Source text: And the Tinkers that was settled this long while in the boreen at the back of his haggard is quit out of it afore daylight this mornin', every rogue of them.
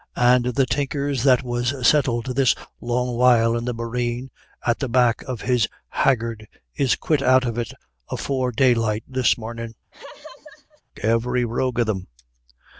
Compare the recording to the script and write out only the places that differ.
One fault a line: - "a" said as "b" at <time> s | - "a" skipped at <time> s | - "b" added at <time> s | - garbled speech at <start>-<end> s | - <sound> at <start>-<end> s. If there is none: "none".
- laugh at 9.9-10.8 s